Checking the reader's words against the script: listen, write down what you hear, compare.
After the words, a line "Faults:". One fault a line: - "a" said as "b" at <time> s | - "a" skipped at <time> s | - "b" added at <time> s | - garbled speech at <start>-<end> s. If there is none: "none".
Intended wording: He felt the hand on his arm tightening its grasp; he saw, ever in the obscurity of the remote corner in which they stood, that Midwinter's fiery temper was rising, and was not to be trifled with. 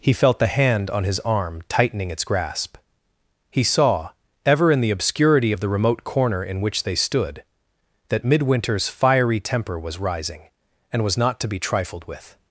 He felt the hand on his arm tightening its grasp; he saw, ever in the obscurity of the remote corner in which they stood, that Midwinter's fiery temper was rising, and was not to be trifled with.
Faults:
none